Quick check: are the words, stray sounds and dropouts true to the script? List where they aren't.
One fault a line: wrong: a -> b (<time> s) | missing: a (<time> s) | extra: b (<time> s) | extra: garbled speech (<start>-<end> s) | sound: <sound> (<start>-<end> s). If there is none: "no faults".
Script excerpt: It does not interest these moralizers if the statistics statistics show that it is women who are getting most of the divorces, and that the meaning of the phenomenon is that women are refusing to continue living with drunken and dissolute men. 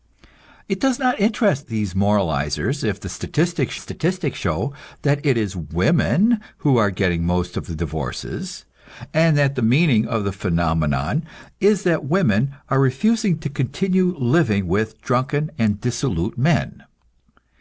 no faults